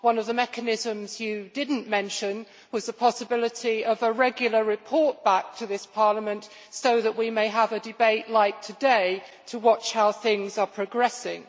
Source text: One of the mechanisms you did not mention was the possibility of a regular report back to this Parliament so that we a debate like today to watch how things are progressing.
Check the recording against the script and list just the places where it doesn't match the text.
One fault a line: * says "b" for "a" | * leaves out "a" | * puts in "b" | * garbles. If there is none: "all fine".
* puts in "may have"